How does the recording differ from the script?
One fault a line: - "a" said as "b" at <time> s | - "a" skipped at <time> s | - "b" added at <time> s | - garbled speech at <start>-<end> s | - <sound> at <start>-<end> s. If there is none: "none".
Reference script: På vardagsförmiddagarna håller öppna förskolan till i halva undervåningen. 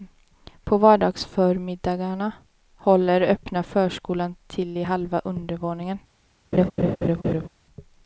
- laugh at 6.5-7.5 s